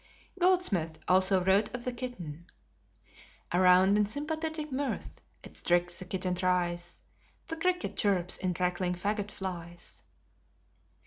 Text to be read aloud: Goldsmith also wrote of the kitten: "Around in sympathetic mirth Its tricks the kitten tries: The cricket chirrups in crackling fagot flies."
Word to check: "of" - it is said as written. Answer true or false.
true